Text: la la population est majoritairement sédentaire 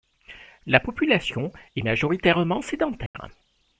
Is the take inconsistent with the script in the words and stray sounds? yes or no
yes